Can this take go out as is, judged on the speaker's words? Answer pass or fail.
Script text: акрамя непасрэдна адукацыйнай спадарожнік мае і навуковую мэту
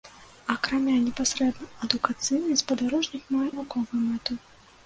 fail